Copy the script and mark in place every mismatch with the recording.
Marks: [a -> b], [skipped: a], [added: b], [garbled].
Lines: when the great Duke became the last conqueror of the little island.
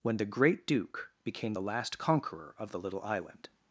when the great Duke became the last conqueror of the little island.